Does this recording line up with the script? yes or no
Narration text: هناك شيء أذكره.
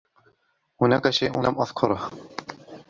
no